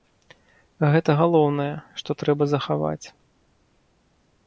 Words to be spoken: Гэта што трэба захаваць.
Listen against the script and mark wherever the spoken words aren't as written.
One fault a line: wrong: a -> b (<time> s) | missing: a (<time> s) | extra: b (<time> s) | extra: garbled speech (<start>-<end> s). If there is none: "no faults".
extra: галоўнае (1.2 s)